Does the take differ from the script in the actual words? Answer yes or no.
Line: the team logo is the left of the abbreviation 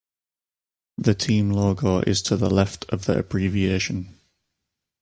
yes